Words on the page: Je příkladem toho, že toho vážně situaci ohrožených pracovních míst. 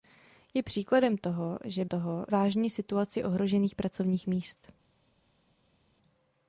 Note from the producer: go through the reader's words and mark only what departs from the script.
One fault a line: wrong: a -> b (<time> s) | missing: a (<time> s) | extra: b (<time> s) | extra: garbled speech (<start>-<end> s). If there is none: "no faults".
no faults